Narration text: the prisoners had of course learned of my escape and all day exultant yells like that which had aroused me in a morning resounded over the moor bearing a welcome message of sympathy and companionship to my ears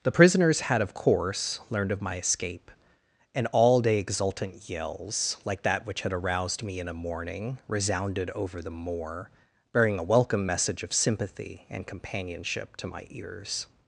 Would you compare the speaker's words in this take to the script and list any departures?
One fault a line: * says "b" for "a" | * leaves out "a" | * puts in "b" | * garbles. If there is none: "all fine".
all fine